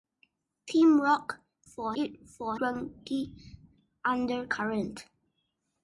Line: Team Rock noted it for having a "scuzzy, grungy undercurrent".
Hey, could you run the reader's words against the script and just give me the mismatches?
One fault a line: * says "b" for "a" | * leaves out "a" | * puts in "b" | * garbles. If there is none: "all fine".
* says "for" for "noted"
* leaves out "having a scuzzy"